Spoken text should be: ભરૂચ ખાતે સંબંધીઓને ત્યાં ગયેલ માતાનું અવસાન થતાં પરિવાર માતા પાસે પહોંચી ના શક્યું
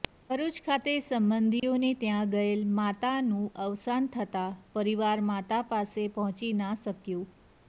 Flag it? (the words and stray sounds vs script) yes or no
yes